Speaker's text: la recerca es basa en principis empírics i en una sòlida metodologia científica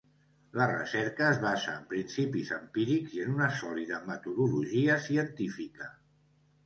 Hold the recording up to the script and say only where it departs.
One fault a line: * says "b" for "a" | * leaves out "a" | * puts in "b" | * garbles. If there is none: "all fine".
all fine